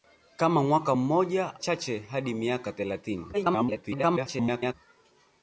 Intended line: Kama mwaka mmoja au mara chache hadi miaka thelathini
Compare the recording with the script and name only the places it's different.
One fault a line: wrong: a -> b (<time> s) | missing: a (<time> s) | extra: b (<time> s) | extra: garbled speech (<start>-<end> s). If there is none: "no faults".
missing: au mara (1.6 s)
extra: garbled speech (3.3-4.7 s)